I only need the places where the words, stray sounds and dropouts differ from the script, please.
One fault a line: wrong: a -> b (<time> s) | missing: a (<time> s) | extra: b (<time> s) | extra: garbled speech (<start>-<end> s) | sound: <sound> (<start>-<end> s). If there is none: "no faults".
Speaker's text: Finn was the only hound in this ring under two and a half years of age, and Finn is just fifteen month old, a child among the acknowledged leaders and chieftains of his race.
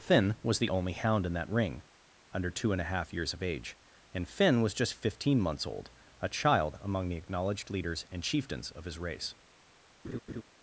wrong: this -> that (1.3 s)
wrong: is -> was (4.6 s)
wrong: month -> months (5.4 s)
sound: laugh (10.0-10.4 s)